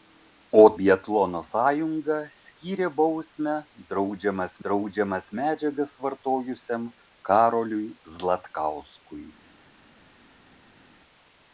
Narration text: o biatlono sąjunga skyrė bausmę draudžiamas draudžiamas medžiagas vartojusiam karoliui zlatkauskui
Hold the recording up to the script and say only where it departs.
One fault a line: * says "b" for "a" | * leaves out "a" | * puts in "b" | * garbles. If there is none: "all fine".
all fine